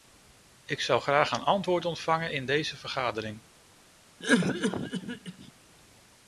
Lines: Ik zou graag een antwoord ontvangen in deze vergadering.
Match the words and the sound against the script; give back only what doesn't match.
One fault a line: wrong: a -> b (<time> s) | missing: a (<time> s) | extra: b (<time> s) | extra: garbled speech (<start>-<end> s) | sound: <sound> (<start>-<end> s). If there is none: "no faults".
sound: cough (4.2-5.5 s)